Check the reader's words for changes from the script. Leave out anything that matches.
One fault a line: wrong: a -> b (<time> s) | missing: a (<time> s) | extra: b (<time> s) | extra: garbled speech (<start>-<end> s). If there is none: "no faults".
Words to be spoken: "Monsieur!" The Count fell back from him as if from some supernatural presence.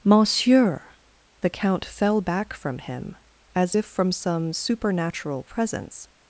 no faults